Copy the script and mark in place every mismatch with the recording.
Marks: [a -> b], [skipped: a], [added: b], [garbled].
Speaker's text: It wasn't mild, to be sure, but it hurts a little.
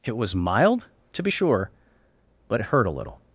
It [wasn't -> was] mild, to be sure, but it [hurts -> hurt] a little.